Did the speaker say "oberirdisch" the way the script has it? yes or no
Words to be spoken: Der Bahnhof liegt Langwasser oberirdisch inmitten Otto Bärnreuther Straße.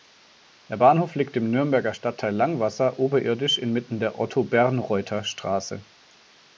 yes